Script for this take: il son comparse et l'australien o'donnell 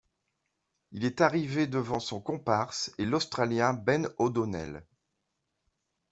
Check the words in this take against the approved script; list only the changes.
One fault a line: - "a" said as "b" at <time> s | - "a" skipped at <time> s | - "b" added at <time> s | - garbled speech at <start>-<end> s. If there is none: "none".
- "est arrivé devant" added at 1.1 s
- "ben" added at 3.7 s